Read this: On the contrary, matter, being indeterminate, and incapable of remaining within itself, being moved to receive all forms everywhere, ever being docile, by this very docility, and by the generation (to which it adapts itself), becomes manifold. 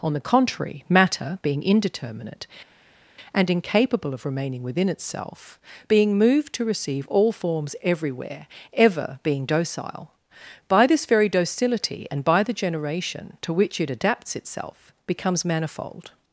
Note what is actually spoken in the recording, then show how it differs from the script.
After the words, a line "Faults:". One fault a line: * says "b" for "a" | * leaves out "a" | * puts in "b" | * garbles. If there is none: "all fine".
On the contrary, matter, being indeterminate, and incapable of remaining within itself, being moved to receive all forms everywhere, ever being docile, by this very docility, and by the generation (to which it adapts itself), becomes manifold.
Faults:
all fine